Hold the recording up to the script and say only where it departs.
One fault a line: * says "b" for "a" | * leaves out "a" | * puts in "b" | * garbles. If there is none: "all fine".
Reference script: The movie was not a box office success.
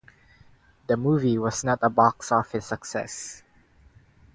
all fine